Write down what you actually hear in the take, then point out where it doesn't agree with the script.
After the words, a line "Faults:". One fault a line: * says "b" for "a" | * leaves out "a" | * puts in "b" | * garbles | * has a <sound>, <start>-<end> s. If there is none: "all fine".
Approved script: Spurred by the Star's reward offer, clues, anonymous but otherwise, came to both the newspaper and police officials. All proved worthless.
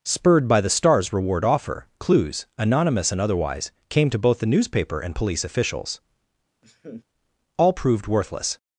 Spurred by the Star's reward offer, clues, anonymous and otherwise, came to both the newspaper and police officials. All proved worthless.
Faults:
* says "and" for "but"
* has a laugh, 6.6-7.0 s